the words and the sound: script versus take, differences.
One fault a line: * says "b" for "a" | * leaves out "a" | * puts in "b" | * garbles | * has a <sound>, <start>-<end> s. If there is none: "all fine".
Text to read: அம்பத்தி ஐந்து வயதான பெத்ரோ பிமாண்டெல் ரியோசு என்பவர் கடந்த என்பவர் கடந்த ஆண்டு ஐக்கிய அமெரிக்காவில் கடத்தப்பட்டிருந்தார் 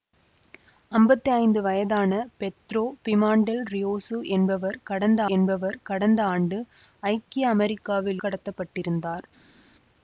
all fine